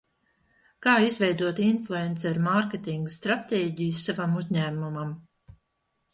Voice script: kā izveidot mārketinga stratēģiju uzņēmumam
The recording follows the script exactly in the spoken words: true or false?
false